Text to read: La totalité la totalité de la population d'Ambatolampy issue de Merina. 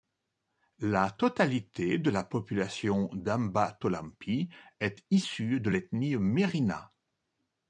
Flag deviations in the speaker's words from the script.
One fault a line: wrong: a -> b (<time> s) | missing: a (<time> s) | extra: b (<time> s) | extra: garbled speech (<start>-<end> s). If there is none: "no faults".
missing: la totalité (2.0 s)
extra: est (4.8 s)
extra: l'ethnie (5.7 s)